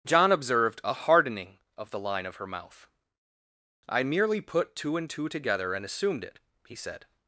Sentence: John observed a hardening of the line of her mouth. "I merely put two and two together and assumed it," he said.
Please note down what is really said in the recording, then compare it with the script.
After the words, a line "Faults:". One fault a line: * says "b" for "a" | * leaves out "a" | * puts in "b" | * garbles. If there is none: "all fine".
John observed a hardening of the line of her mouth. "I merely put two and two together and assumed it," he said.
Faults:
all fine